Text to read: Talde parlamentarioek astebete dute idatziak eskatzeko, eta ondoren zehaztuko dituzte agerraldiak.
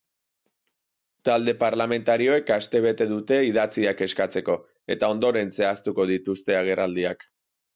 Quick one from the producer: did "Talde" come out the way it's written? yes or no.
yes